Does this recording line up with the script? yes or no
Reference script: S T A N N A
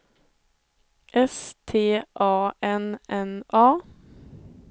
yes